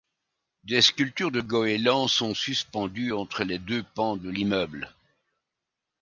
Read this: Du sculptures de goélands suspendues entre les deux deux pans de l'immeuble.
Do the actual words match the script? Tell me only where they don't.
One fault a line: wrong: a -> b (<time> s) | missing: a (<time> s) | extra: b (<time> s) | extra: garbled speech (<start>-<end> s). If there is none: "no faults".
wrong: Du -> Des (0.6 s)
extra: sont (2.1 s)
missing: deux (3.8 s)